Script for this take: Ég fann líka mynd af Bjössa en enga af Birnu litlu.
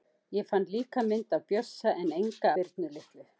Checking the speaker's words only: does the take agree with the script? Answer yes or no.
no